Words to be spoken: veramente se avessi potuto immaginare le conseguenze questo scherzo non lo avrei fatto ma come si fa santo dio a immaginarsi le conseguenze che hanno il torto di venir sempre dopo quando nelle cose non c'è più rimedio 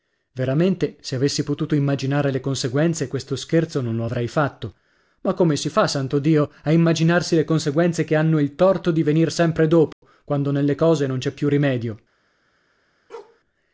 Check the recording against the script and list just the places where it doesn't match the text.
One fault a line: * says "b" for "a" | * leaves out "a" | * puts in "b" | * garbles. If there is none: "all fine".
all fine